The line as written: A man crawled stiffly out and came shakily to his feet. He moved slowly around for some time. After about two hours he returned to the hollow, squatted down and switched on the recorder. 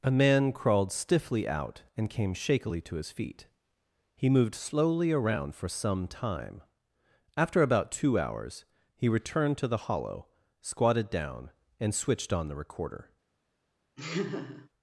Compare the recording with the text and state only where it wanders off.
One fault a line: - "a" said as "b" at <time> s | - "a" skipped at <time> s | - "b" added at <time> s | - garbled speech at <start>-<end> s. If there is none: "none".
none